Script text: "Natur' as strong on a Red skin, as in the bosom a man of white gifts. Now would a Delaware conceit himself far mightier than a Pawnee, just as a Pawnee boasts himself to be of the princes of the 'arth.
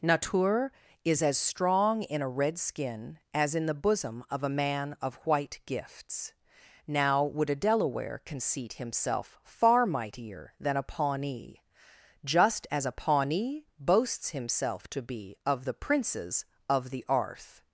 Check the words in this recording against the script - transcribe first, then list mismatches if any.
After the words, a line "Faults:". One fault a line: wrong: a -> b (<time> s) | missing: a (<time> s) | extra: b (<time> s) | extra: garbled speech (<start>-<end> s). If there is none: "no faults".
"Natur' is as strong in a Red skin, as in the bosom of a man of white gifts. Now would a Delaware conceit himself far mightier than a Pawnee, just as a Pawnee boasts himself to be of the princes of the 'arth.
Faults:
extra: is (1.1 s)
wrong: on -> in (2.0 s)
extra: of (4.3 s)